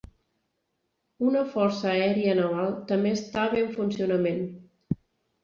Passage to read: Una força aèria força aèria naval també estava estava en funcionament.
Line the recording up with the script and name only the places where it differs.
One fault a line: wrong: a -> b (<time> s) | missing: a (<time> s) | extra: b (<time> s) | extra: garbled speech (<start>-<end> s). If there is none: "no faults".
missing: força aèria (2.3 s)
missing: estava (3.6 s)